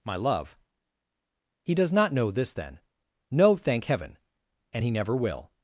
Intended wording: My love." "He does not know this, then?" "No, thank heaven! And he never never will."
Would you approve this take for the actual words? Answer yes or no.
no